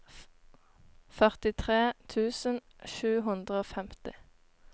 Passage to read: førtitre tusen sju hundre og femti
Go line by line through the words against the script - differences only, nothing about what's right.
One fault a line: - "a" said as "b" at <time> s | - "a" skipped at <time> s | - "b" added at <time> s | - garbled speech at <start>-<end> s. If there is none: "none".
none